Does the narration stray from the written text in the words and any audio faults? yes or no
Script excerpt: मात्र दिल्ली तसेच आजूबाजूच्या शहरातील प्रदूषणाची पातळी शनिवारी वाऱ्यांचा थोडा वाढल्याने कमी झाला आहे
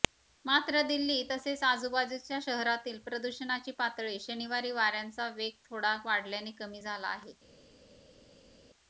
yes